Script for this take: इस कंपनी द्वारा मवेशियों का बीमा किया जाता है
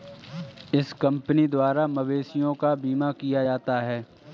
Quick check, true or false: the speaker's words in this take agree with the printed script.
true